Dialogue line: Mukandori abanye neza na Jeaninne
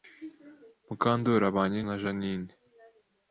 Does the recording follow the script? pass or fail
fail